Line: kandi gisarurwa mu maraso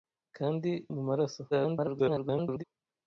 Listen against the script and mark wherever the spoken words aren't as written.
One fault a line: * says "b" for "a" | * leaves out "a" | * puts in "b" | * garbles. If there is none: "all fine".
* leaves out "gisarurwa"
* garbles